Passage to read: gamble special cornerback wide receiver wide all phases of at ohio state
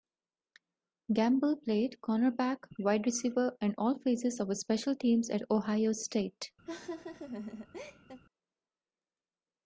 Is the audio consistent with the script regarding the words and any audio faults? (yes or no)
no